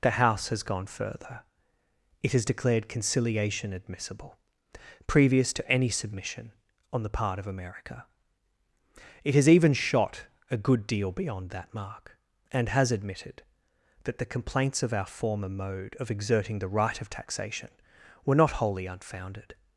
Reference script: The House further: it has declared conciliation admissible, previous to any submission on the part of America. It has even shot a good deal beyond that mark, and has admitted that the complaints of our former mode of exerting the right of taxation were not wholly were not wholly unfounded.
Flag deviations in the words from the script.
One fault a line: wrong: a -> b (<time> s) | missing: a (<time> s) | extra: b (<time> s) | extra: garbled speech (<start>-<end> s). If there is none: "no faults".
extra: has gone (0.5 s)
missing: were not wholly (18.9 s)